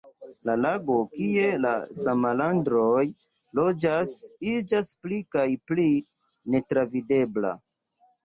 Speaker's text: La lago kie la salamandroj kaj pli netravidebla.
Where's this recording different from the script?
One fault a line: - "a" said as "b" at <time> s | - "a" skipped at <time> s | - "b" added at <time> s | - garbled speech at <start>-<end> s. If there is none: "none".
- "loĝas iĝas pli" added at 3.6 s